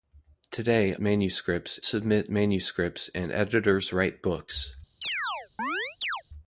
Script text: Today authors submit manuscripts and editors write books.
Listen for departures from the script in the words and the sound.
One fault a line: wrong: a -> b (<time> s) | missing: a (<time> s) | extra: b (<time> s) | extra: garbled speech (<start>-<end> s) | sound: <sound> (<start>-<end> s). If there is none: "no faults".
wrong: authors -> manuscripts (1.0 s)
sound: chirp (5.0-6.2 s)